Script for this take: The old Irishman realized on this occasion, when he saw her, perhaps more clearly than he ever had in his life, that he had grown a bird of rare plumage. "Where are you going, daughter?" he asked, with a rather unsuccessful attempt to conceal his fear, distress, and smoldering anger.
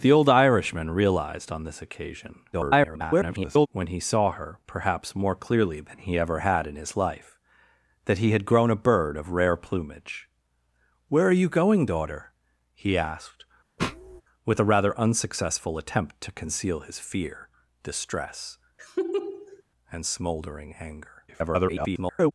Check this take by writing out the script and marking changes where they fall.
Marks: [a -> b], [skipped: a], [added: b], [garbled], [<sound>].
The old Irishman realized on this occasion, [garbled] when he saw her, perhaps more clearly than he ever had in his life, that he had grown a bird of rare plumage. "Where are you going, daughter?" he asked, [sniff] with a rather unsuccessful attempt to conceal his fear, distress, [laugh] and smoldering anger. [garbled]